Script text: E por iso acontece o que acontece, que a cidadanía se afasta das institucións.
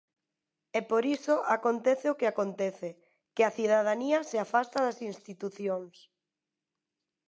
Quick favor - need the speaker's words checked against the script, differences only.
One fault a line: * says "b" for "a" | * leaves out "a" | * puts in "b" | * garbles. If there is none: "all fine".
all fine